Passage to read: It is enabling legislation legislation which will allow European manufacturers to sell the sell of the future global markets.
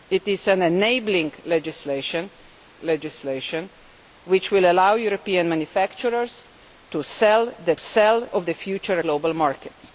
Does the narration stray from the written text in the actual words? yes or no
no